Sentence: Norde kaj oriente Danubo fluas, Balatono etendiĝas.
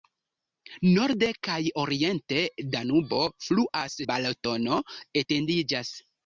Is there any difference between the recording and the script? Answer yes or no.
no